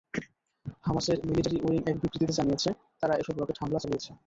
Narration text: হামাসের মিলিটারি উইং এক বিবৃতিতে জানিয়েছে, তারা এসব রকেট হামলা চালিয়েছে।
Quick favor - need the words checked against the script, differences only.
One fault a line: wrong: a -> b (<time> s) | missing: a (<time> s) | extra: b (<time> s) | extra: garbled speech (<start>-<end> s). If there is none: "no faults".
no faults